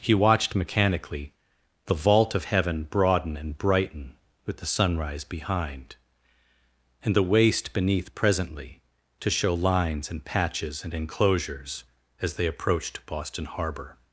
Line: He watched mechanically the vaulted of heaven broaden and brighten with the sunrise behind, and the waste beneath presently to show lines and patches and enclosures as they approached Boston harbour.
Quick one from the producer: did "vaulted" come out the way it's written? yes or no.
no